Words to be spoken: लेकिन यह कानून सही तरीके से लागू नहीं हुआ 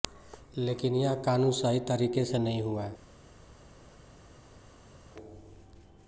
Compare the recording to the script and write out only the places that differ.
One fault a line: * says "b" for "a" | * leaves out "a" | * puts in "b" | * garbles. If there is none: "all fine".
* leaves out "लागू"